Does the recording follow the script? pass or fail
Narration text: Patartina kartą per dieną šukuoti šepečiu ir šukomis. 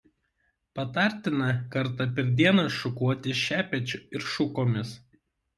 pass